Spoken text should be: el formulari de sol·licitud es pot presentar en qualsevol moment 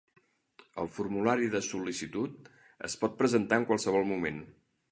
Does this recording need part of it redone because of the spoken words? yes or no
no